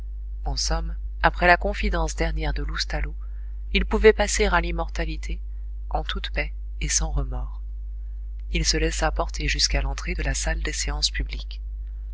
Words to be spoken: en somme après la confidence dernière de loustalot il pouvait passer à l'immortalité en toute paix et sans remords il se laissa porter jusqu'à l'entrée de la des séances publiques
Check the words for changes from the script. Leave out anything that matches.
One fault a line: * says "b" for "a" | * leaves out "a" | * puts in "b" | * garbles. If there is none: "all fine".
* puts in "salle"